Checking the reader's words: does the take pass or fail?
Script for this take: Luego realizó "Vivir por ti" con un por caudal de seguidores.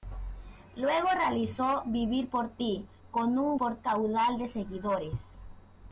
pass